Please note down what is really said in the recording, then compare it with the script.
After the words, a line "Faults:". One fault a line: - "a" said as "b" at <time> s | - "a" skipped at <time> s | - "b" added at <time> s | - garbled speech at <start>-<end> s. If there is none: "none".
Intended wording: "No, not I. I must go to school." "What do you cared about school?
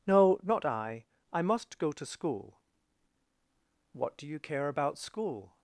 "No, not I. I must go to school." "What do you care about school?
Faults:
- "cared" said as "care" at 4.4 s